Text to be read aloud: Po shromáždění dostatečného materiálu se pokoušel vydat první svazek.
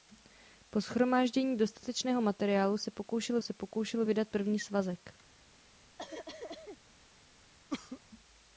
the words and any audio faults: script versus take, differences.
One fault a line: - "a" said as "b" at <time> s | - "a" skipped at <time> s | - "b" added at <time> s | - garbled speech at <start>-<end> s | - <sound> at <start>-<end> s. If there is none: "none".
- "se pokoušel" added at 3.4 s
- cough at 6.0-6.8 s
- cough at 7.7-8.0 s